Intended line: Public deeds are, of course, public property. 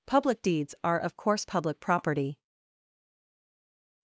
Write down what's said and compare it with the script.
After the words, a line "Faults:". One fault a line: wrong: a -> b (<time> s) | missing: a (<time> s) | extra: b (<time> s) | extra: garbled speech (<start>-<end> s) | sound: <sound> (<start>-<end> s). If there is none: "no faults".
Public deeds are, of course, public property.
Faults:
no faults